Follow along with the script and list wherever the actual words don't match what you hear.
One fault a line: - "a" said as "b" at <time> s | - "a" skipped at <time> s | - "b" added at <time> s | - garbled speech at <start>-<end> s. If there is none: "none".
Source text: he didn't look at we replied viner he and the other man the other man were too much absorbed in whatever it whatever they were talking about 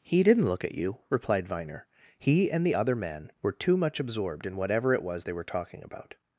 - "we" said as "you" at 0.7 s
- "the other man" skipped at 3.3 s
- "whatever" said as "was" at 5.0 s